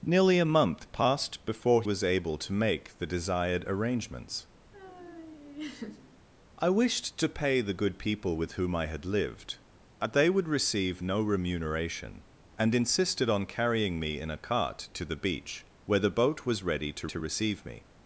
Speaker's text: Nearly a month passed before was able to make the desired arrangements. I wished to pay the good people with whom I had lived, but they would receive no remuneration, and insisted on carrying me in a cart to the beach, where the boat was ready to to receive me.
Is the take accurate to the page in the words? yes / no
yes